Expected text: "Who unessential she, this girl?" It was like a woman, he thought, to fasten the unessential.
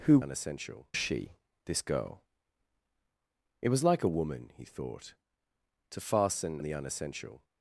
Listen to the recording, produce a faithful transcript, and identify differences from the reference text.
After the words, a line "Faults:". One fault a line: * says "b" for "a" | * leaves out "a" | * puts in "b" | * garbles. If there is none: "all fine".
"Who unessential she, this girl?" It was like a woman, he thought, to fasten the unessential.
Faults:
all fine